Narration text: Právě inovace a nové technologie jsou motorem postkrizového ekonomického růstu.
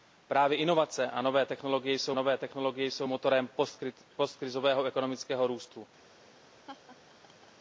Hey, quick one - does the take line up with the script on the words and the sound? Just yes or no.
no